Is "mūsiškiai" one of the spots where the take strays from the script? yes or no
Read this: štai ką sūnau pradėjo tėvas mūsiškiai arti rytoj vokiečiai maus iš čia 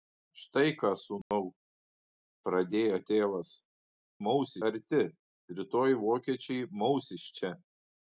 yes